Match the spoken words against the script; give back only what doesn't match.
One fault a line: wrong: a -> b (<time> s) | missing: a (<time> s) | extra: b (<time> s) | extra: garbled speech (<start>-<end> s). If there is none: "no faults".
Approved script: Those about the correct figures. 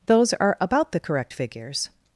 extra: are (0.3 s)